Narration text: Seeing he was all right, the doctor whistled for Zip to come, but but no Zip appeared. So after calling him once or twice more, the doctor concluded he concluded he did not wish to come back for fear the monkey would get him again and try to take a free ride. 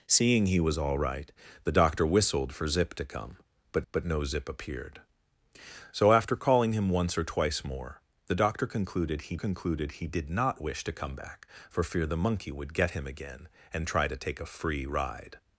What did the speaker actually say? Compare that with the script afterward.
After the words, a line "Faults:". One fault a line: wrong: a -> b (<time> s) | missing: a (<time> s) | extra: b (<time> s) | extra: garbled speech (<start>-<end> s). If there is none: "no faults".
Seeing he was all right, the doctor whistled for Zip to come, but but no Zip appeared. So after calling him once or twice more, the doctor concluded he concluded he did not wish to come back for fear the monkey would get him again and try to take a free ride.
Faults:
no faults